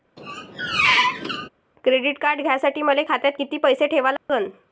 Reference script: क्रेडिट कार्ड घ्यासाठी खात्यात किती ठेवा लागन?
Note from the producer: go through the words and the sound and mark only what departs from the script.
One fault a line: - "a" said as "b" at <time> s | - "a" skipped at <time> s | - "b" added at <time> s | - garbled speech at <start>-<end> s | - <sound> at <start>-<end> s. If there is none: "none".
- squeak at 0.2-1.5 s
- "मले" added at 2.8 s
- "पैसे" added at 3.6 s
- dropout at 4.2-4.3 s